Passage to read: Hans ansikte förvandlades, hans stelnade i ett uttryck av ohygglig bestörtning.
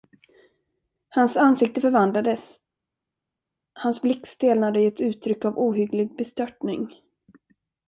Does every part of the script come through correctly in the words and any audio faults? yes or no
no